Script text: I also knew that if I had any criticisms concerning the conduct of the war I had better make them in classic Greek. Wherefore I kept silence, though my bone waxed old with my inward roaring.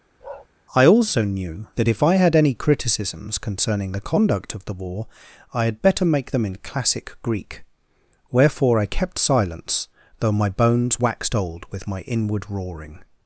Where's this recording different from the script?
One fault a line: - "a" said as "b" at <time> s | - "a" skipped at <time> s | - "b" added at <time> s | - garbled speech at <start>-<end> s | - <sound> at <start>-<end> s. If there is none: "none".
- bark at 0.2-0.5 s
- "bone" said as "bones" at 10.5 s